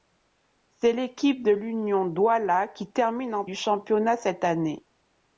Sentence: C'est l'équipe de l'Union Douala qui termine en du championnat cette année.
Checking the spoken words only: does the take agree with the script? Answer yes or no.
yes